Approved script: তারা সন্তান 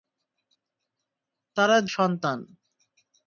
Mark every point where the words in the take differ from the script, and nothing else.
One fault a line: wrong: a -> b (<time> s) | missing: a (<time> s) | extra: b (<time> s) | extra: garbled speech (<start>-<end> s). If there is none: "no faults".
no faults